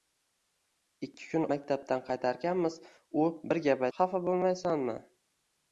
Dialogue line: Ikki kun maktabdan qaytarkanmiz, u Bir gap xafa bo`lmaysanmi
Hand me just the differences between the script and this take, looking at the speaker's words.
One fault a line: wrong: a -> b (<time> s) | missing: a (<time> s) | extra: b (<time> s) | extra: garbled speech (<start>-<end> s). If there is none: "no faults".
no faults